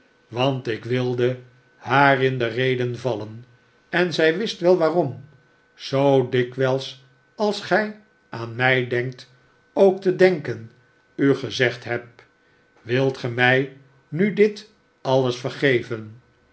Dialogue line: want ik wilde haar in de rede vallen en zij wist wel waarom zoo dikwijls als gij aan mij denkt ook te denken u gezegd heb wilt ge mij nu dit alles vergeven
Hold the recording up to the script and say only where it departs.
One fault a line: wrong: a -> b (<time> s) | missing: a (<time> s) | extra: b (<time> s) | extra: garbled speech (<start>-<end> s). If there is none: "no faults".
no faults